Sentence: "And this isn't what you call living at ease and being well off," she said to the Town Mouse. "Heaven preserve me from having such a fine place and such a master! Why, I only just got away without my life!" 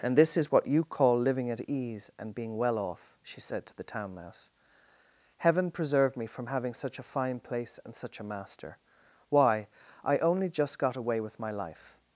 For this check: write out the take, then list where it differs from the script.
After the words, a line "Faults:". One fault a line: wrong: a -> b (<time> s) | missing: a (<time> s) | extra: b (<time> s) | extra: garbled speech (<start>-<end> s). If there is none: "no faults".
"And this is what you call living at ease and being well off," she said to the Town Mouse. "Heaven preserve me from having such a fine place and such a master! Why, I only just got away with my life!"
Faults:
wrong: isn't -> is (0.3 s)
wrong: without -> with (11.2 s)